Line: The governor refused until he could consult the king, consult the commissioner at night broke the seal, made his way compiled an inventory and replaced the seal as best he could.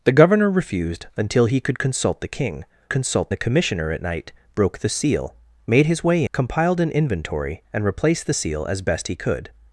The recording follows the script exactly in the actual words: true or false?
true